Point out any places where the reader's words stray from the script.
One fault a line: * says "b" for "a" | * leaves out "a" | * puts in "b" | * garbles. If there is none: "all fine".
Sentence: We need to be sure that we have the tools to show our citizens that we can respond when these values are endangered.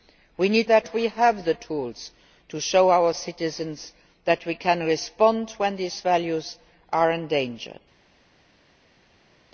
* leaves out "to be sure"